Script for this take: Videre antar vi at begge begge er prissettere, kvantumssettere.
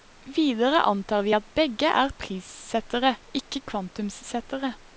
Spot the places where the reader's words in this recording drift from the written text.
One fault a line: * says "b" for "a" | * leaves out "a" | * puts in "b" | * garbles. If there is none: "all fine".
* leaves out "begge"
* puts in "ikke"